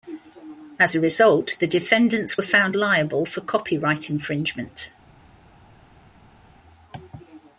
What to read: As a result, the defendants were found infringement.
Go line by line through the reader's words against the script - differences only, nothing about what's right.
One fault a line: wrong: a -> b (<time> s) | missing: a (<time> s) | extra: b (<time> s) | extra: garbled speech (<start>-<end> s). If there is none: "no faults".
extra: liable for copyright (2.8 s)